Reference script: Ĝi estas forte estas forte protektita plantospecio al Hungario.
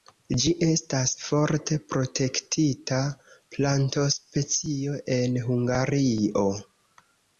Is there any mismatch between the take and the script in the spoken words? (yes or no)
yes